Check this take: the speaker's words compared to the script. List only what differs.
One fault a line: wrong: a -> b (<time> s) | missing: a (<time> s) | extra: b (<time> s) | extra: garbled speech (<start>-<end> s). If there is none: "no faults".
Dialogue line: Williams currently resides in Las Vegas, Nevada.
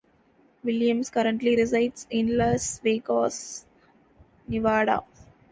no faults